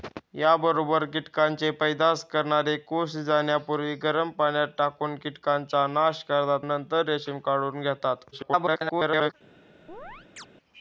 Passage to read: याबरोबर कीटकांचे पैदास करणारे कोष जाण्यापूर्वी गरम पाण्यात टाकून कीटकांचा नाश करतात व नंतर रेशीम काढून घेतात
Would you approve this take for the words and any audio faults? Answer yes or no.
no